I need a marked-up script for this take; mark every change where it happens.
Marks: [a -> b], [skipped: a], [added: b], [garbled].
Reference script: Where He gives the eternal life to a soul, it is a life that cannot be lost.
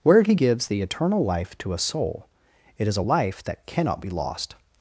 Where He gives the eternal life to a soul, it is a life that cannot be lost.